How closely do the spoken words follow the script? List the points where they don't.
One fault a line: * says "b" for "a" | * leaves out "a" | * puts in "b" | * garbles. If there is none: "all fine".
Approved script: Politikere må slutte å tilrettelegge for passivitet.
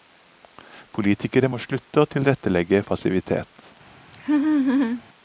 * leaves out "for"